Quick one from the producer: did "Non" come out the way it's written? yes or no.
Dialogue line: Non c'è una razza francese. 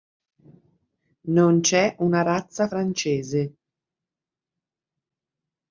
yes